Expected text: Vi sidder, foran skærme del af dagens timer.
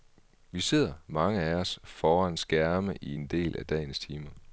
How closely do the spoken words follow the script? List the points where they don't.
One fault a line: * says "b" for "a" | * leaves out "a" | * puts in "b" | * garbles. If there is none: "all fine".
* puts in "mange af os"
* puts in "i en"